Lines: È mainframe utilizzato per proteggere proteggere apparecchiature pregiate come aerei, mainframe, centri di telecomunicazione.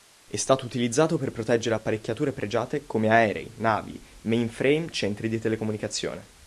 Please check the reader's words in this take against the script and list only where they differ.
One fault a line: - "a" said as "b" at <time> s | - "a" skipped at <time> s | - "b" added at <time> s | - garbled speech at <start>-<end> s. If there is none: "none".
- "mainframe" said as "stato" at 0.3 s
- "proteggere" skipped at 1.8 s
- "navi" added at 3.6 s